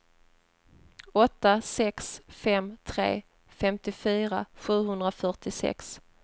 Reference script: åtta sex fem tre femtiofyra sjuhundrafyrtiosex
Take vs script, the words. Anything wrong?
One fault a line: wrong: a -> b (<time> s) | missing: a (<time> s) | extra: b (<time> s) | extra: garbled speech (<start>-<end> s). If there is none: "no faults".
no faults